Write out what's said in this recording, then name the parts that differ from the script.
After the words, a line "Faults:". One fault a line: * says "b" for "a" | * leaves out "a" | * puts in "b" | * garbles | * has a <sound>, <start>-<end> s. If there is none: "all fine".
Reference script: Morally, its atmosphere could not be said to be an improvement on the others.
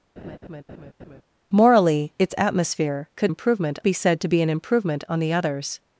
Morally, its atmosphere could improvement be said to be an improvement on the others.
Faults:
* has a laugh, 0.2-1.2 s
* says "improvement" for "not"